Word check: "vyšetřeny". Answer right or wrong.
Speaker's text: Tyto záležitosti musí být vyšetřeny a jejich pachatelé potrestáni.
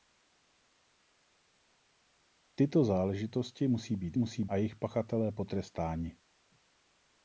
wrong